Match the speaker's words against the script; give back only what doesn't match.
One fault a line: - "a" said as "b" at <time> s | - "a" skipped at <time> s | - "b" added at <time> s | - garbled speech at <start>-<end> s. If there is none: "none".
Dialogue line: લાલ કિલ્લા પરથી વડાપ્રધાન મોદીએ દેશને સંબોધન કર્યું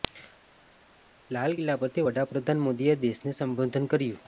none